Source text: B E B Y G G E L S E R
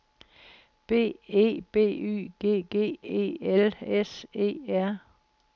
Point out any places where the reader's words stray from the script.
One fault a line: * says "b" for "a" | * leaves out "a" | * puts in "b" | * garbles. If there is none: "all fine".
all fine